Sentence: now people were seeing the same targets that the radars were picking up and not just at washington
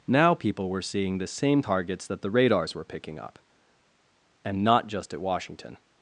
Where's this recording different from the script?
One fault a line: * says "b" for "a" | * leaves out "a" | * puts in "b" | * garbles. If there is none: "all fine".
all fine